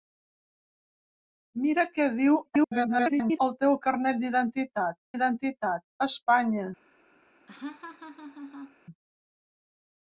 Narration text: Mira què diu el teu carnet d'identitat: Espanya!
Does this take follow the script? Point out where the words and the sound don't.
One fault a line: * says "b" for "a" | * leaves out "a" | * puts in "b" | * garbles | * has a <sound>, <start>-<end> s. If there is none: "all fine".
* garbles
* puts in "d'identitat"
* has a laugh, 7.5-8.8 s